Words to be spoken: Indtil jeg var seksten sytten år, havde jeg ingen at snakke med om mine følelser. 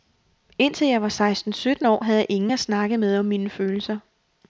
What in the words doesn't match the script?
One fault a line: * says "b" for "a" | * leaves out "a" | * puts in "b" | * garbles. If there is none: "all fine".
all fine